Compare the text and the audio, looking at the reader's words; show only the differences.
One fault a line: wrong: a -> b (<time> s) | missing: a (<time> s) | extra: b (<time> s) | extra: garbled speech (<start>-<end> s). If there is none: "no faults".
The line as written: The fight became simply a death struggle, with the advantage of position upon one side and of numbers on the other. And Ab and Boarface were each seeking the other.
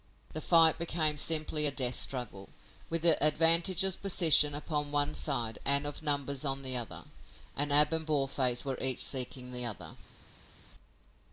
no faults